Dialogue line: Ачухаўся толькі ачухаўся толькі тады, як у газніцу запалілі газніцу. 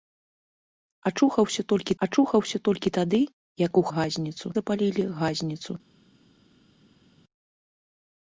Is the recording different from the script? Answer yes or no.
no